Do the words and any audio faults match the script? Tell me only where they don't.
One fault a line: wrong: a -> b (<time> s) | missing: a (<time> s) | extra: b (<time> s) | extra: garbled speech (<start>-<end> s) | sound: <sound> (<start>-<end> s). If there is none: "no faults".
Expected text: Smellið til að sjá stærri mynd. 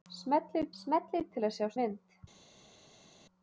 extra: smellið (0.8 s)
missing: stærri (1.7 s)